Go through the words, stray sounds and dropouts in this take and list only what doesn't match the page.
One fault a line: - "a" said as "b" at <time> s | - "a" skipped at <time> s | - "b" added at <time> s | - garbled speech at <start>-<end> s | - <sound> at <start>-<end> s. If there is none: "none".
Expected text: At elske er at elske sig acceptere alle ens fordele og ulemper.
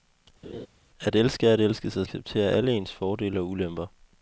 - laugh at 0.4-0.7 s